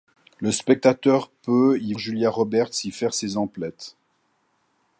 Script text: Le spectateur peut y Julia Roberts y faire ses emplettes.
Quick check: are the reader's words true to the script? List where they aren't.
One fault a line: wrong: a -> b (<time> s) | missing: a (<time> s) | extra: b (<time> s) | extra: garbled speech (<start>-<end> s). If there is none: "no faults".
no faults